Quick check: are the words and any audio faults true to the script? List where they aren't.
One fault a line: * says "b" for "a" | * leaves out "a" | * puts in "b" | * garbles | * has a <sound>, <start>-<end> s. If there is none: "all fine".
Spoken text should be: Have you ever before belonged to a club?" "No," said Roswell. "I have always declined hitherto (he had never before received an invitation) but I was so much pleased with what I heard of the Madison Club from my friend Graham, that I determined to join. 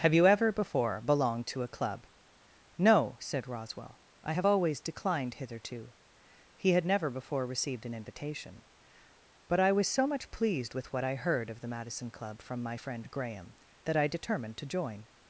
all fine